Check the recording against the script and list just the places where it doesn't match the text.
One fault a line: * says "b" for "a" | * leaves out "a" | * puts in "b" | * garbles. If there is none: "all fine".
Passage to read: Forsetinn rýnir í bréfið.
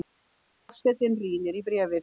all fine